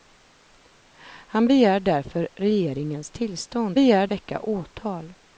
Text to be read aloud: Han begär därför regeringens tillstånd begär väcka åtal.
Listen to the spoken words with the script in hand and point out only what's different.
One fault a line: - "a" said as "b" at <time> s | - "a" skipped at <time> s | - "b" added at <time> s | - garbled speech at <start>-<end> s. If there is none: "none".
none